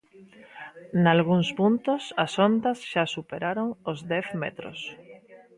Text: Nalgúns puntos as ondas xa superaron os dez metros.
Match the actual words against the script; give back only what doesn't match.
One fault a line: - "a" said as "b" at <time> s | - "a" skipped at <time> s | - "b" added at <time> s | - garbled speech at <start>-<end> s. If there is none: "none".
none